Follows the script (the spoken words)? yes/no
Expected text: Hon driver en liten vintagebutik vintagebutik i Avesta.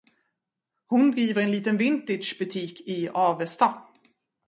no